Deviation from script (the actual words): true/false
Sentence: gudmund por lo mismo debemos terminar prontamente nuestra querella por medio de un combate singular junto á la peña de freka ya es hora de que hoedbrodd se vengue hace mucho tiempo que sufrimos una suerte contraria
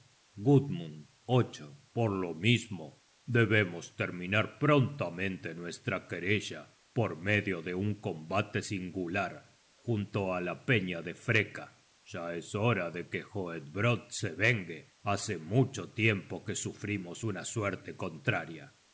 false